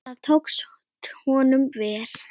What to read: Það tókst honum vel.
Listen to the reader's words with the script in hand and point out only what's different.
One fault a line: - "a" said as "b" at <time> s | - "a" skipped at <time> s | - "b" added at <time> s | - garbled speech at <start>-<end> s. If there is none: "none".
none